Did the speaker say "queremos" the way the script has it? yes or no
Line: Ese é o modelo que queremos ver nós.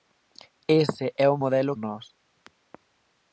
no